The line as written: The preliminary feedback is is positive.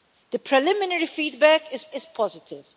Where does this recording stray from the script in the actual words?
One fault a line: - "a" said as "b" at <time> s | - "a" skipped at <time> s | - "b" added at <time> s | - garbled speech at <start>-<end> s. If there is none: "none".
none